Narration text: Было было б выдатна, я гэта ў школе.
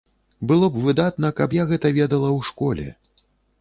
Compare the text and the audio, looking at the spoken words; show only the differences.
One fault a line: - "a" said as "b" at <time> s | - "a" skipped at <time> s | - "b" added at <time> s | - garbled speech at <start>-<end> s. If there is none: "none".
- "было" skipped at 0.7 s
- "каб" added at 1.4 s
- "ведала" added at 2.0 s